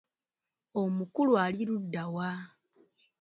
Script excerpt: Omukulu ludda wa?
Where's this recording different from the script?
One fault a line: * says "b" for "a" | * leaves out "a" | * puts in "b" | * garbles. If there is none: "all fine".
* puts in "ali"